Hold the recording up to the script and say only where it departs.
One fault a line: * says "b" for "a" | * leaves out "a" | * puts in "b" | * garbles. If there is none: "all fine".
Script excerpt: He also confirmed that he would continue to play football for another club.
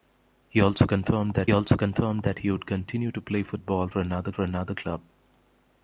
* puts in "also confirmed that"
* puts in "for another"